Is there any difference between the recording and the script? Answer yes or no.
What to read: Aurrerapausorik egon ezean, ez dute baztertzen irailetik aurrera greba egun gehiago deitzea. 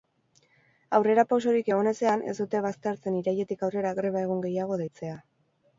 no